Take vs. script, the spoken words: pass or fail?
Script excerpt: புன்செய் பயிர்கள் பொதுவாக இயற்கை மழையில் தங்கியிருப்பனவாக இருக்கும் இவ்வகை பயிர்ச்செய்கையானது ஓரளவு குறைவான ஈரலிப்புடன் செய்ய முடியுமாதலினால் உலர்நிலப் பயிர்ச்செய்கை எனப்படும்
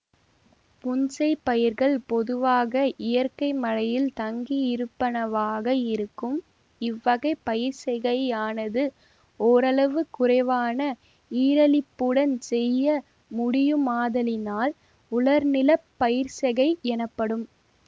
pass